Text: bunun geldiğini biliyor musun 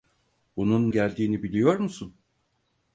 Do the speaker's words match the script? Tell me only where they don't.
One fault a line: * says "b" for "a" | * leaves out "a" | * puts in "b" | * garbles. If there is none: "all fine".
all fine